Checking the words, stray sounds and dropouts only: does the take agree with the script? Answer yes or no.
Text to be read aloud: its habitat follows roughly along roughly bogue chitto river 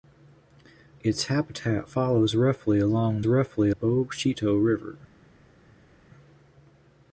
yes